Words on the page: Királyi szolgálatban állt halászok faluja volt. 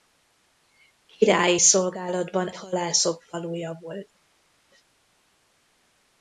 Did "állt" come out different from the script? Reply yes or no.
yes